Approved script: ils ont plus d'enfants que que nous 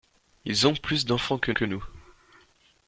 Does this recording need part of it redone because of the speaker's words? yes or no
no